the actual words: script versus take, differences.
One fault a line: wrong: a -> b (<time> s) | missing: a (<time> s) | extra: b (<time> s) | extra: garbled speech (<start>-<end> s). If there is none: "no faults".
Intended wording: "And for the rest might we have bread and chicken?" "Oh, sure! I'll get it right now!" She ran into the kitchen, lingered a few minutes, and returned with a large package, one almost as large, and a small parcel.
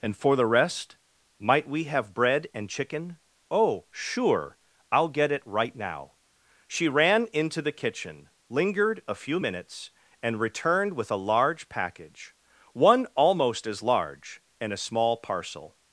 no faults